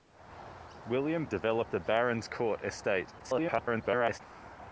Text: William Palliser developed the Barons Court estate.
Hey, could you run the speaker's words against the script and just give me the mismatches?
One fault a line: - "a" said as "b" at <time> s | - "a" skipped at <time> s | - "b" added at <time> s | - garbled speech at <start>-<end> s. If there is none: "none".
- "Palliser" skipped at 1.3 s
- garbled speech at 3.2-4.2 s